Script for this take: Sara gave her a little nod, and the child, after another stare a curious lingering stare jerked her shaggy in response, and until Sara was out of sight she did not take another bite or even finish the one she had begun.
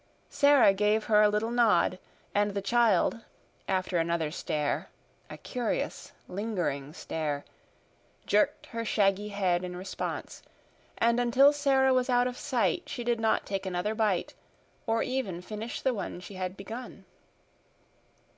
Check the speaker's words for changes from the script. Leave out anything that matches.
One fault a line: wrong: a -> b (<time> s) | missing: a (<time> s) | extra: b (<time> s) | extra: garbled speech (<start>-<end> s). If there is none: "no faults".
extra: head (9.3 s)